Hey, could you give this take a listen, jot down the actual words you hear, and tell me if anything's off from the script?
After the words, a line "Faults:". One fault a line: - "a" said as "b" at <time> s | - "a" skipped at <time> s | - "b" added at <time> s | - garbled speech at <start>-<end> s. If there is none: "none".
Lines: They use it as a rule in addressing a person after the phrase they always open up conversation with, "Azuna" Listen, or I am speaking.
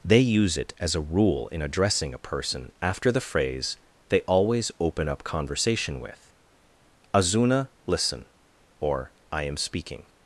They use it as a rule in addressing a person after the phrase they always open up conversation with, "Azuna" Listen, or I am speaking.
Faults:
none